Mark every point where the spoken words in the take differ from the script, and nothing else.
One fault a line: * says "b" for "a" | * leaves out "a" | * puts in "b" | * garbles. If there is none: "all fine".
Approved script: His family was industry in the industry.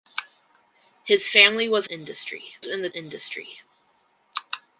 all fine